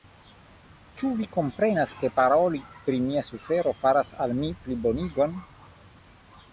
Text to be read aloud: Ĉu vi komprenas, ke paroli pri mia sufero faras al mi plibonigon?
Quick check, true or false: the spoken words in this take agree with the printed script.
true